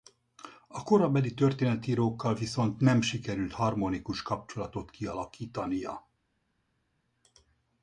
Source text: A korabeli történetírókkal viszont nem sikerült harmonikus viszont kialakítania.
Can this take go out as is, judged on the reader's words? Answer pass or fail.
fail